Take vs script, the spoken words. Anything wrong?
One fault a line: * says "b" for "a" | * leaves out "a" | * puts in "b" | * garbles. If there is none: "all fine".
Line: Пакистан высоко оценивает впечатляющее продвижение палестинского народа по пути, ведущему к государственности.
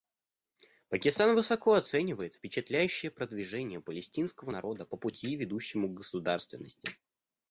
all fine